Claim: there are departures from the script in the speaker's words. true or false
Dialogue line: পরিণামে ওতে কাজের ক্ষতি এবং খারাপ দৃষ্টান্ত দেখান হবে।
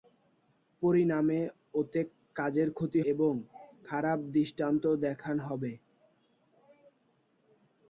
false